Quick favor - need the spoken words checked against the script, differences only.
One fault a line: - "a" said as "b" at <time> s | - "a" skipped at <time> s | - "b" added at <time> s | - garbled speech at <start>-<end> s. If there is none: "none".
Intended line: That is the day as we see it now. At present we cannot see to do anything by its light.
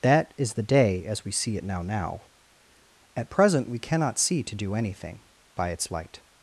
- "now" added at 1.8 s